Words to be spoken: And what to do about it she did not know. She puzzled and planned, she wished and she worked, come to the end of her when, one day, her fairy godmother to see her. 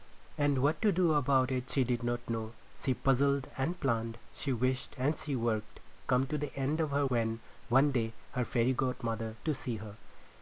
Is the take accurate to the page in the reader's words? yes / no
yes